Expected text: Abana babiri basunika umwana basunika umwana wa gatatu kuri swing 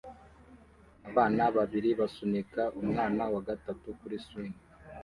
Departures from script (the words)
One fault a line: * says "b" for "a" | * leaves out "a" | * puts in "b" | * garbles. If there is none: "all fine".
* leaves out "basunika umwana"